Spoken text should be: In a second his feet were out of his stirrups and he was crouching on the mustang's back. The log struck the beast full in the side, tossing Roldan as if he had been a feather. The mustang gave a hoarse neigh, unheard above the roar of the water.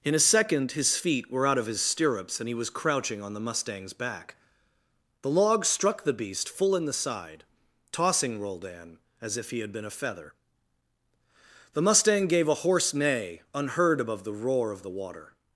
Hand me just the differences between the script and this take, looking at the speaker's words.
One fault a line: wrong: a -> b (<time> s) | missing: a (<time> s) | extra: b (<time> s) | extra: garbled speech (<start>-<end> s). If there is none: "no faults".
no faults